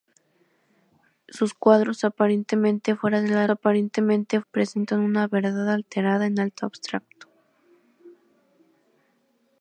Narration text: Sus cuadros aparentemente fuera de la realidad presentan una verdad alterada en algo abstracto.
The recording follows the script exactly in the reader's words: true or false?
false